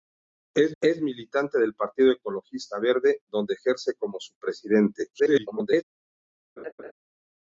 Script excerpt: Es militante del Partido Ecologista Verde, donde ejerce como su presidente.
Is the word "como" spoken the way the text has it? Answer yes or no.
yes